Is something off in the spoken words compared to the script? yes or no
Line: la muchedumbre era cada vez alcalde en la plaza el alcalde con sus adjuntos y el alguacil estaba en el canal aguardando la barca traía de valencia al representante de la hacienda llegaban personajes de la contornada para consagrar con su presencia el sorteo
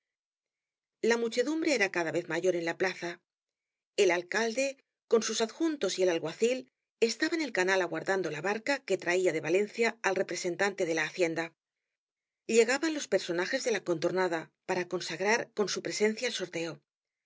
yes